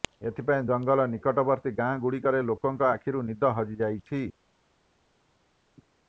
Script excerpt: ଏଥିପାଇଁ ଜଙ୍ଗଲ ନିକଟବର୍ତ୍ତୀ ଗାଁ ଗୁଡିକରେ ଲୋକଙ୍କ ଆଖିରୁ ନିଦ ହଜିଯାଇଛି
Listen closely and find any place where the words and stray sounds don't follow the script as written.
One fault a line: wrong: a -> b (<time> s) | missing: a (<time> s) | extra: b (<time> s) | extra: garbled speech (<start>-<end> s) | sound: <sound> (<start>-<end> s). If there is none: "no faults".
no faults